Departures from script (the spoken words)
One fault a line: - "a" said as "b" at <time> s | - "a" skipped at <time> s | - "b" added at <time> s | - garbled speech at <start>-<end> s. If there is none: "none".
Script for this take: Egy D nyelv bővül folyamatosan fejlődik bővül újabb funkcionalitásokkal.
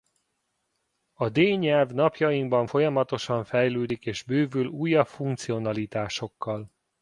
- "Egy" said as "A" at 1.1 s
- "bővül" said as "napjainkban" at 1.9 s
- "és" added at 4.1 s